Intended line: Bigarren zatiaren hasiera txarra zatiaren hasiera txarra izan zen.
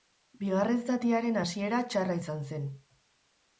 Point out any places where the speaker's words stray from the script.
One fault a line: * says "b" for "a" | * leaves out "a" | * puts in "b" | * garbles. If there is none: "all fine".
* leaves out "zatiaren hasiera txarra"